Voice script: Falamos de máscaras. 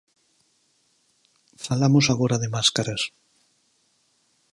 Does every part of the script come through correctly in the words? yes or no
no